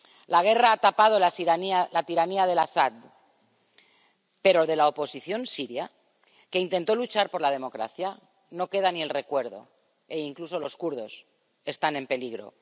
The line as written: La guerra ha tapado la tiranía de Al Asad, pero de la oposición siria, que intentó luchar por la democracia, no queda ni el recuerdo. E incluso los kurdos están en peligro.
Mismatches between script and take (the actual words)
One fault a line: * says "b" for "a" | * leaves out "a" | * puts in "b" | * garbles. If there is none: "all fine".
all fine